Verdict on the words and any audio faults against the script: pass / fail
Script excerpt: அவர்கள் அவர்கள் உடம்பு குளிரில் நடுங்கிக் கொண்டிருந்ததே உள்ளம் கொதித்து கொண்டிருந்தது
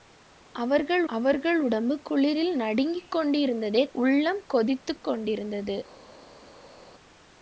pass